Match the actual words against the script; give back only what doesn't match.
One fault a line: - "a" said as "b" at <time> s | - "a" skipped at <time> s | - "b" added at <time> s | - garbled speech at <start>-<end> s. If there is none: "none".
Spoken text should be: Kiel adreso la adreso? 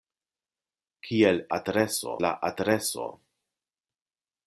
none